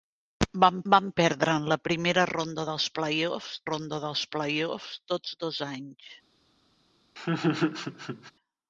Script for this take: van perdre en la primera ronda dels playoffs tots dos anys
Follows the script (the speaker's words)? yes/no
no